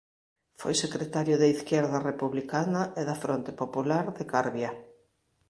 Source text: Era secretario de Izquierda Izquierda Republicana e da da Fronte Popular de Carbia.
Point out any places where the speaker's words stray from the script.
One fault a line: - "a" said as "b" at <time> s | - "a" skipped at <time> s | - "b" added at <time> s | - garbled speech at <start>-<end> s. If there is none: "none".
- "Era" said as "Foi" at 0.6 s
- "Izquierda" skipped at 2.0 s
- "da" skipped at 3.2 s